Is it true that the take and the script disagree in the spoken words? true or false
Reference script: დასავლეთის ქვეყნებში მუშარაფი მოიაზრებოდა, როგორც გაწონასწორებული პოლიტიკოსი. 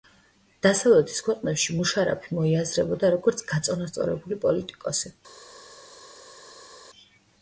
false